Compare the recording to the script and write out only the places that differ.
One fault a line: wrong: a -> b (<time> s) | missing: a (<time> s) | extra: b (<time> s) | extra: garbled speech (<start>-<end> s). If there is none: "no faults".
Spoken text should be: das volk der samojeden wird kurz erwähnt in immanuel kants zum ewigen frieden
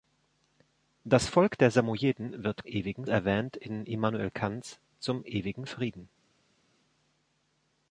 wrong: kurz -> ewigen (2.6 s)